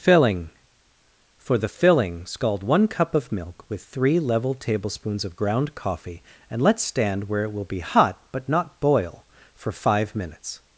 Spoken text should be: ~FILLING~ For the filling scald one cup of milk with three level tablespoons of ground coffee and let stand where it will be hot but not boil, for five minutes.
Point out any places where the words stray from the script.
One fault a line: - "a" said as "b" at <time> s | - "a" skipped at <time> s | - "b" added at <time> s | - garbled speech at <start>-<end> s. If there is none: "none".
none